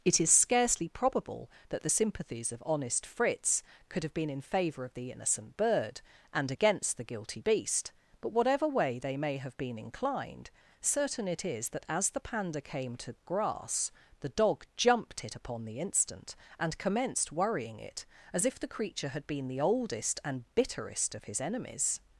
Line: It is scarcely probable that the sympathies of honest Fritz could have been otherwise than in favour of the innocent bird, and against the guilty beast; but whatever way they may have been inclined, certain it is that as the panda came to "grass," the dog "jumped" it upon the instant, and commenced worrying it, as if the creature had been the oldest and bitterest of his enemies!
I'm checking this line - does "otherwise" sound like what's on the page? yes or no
no